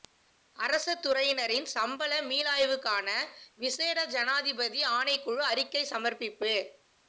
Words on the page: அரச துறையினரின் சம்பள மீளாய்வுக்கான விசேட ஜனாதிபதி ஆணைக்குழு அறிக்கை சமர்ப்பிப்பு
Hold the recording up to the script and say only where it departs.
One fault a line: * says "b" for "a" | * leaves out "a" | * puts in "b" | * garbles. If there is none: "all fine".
all fine